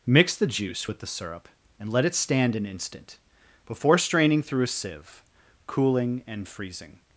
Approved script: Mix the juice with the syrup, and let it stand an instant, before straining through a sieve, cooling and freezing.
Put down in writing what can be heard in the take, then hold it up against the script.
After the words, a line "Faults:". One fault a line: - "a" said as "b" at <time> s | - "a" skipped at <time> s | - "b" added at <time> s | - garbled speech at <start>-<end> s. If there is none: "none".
Mix the juice with the syrup, and let it stand an instant, before straining through a sieve, cooling and freezing.
Faults:
none